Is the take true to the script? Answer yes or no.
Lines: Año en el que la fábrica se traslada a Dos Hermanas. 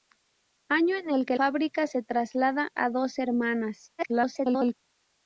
no